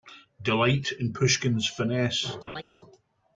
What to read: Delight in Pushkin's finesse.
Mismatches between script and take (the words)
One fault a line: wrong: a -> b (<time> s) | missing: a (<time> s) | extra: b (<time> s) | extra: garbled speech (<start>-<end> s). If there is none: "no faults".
no faults